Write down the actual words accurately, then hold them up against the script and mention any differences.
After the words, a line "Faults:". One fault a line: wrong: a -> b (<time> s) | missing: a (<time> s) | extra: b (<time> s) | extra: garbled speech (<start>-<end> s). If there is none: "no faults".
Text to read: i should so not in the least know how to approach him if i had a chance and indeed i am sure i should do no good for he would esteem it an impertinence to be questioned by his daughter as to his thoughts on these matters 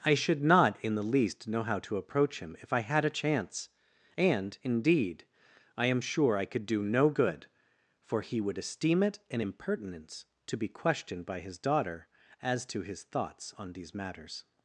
i should not in the least know how to approach him if i had a chance and indeed i am sure i could do no good for he would esteem it an impertinence to be questioned by his daughter as to his thoughts on these matters
Faults:
missing: so (0.4 s)
wrong: should -> could (6.5 s)